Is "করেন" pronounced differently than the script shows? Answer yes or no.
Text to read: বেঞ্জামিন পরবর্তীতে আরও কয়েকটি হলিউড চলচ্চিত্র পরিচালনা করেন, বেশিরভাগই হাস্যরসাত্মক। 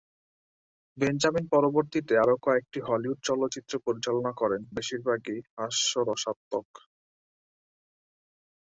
no